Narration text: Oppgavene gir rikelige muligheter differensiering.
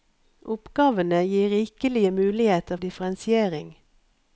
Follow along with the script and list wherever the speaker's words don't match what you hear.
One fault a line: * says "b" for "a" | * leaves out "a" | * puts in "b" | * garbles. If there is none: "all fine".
all fine